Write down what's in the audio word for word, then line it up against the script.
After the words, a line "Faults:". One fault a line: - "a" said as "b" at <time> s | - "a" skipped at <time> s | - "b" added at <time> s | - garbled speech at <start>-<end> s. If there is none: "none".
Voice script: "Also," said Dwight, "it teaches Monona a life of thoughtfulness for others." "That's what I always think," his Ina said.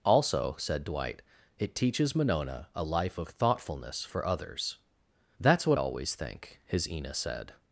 "Also," said Dwight, "it teaches Monona a life of thoughtfulness for others." "That's what always think," his Ina said.
Faults:
- "I" skipped at 5.8 s